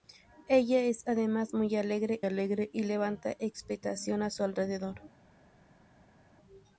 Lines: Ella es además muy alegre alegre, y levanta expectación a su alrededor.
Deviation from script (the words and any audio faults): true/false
false